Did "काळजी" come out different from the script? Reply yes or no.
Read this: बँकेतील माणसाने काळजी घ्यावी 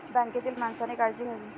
no